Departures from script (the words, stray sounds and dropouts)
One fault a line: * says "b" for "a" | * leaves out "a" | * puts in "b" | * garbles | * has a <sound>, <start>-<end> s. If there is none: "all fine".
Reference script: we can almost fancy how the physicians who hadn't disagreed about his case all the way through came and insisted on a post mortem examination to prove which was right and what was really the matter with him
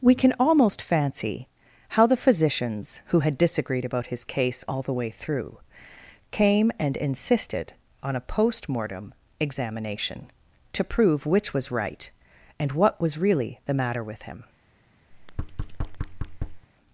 * says "had" for "hadn't"
* has a thud, 15.1-16.7 s